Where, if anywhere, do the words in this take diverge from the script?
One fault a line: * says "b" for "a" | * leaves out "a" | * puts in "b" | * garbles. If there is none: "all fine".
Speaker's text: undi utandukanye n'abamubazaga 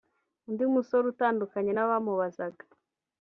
* puts in "musore"